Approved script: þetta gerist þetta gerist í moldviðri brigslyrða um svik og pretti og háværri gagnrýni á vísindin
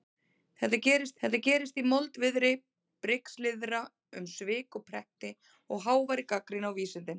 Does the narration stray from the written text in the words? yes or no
no